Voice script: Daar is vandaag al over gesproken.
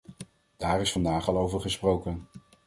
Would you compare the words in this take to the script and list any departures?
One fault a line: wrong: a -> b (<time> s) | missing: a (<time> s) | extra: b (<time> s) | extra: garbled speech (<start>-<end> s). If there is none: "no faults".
no faults